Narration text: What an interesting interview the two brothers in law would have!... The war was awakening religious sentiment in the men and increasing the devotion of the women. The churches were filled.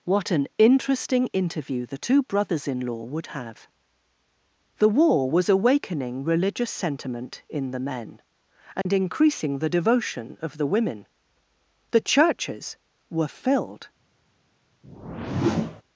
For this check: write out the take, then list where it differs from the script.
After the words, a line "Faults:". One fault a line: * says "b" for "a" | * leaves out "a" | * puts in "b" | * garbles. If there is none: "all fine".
What an interesting interview the two brothers in law would have!... The war was awakening religious sentiment in the men and increasing the devotion of the women. The churches were filled.
Faults:
all fine